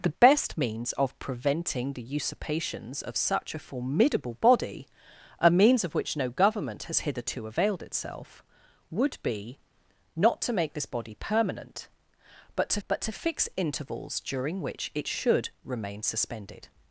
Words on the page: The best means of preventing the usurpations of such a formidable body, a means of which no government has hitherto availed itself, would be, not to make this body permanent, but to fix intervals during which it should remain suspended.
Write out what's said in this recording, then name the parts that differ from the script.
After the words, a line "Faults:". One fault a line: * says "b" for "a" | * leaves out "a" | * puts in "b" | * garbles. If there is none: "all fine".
The best means of preventing the usurpations of such a formidable body, a means of which no government has hitherto availed itself, would be, not to make this body permanent, but to but to fix intervals during which it should remain suspended.
Faults:
* puts in "but to"